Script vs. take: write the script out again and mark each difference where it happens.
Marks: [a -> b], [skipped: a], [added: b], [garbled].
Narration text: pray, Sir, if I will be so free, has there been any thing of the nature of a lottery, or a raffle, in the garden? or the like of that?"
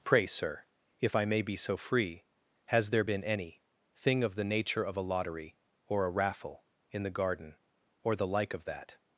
pray, Sir, if I [will -> may] be so free, has there been any thing of the nature of a lottery, or a raffle, in the garden? or the like of that?"